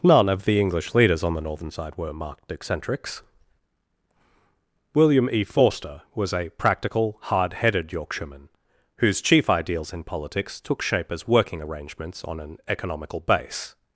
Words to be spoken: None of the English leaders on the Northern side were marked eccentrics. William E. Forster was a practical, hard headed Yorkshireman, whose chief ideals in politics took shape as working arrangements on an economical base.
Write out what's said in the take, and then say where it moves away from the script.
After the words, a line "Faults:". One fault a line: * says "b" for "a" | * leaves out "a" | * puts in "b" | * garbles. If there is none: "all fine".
None of the English leaders on the Northern side were marked eccentrics. William E. Forster was a practical, hard headed Yorkshireman, whose chief ideals in politics took shape as working arrangements on an economical base.
Faults:
all fine